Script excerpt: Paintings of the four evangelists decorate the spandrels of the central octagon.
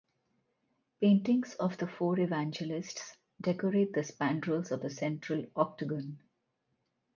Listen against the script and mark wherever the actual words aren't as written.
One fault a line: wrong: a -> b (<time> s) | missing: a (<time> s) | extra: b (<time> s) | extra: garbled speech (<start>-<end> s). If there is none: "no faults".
no faults